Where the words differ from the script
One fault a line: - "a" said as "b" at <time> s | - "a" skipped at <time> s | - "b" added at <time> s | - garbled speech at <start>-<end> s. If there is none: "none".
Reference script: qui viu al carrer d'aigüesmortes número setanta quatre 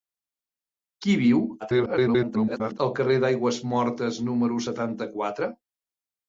- garbled speech at 1.6-2.8 s